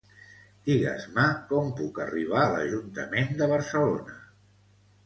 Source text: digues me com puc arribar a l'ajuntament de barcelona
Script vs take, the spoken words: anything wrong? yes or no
no